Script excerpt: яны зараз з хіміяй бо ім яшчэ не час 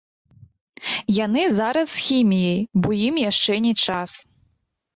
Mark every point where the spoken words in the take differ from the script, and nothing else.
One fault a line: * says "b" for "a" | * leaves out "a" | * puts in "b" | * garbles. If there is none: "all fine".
all fine